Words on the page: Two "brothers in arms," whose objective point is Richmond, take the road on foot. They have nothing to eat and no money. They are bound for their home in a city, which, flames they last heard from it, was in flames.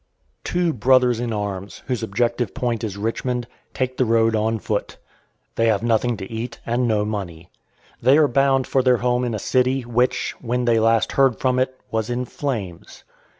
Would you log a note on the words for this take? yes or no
yes